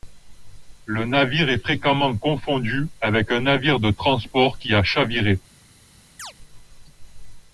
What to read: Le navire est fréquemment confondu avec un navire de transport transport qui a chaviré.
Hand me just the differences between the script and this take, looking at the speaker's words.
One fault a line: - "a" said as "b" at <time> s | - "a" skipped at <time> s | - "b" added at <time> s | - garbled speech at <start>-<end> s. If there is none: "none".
- "transport" skipped at 4.6 s